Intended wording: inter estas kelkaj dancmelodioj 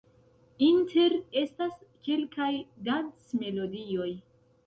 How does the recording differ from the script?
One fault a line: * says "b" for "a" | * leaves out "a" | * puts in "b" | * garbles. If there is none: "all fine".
all fine